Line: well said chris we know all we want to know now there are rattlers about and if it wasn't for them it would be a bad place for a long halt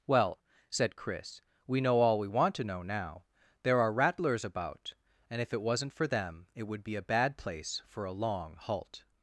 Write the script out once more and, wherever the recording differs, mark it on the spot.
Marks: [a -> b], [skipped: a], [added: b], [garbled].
well said chris we know all we want to know now there are rattlers about and if it wasn't for them it would be a bad place for a long halt